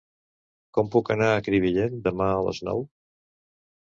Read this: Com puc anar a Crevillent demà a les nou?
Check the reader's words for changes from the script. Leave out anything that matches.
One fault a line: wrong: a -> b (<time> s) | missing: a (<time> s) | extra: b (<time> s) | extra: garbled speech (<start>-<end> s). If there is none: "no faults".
no faults